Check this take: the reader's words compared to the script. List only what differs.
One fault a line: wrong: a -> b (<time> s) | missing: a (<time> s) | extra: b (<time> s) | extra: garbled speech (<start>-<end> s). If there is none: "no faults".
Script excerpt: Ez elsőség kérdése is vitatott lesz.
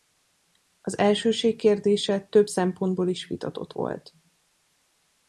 wrong: Ez -> Az (0.8 s)
extra: több szempontból (2.2 s)
wrong: lesz -> volt (3.7 s)